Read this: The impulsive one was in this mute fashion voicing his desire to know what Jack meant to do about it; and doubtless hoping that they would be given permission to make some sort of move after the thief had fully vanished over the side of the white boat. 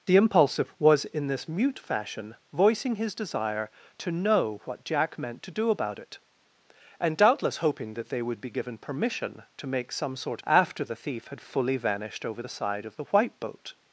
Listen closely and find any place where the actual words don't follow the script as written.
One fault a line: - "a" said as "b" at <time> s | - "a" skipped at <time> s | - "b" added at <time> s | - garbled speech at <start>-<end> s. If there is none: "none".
- "one" skipped at 0.8 s
- "of move" skipped at 10.4 s